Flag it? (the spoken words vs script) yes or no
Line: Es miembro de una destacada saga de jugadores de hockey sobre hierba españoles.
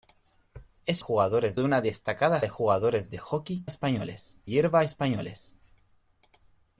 yes